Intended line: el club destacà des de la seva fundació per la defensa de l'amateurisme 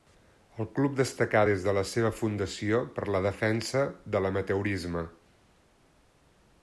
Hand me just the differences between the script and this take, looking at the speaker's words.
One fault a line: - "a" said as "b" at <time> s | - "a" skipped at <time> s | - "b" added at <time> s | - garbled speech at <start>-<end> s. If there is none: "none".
none